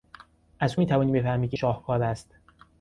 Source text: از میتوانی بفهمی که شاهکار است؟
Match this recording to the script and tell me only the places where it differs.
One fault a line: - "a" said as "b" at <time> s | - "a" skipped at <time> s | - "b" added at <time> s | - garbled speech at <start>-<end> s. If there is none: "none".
none